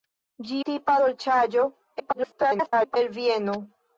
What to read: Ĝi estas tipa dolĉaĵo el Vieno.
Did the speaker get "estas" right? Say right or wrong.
wrong